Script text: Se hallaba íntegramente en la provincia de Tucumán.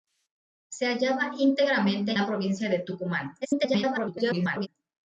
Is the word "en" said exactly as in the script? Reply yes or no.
no